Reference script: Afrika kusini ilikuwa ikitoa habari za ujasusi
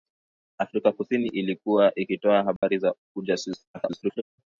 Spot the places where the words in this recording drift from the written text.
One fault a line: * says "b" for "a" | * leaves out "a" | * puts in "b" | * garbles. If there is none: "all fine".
* garbles